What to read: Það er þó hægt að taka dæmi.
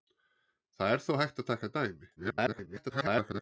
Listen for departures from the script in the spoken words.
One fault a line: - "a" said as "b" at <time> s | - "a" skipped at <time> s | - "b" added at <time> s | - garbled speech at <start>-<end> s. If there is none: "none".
- garbled speech at 2.2-3.4 s